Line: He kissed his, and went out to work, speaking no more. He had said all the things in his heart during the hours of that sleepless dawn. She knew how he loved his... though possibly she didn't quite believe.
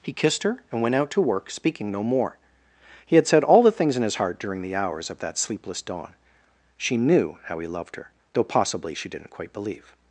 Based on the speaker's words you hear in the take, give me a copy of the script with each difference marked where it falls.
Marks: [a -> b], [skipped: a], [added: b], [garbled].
He kissed [his, -> her] and went out to work, speaking no more. He had said all the things in his heart during the hours of that sleepless dawn. She knew how he loved [his... -> her] though possibly she didn't quite believe.